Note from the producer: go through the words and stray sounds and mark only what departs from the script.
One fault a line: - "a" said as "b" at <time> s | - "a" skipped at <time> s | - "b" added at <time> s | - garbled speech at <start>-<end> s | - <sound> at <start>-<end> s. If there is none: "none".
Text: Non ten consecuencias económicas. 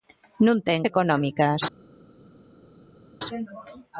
- "consecuencias" skipped at 0.8 s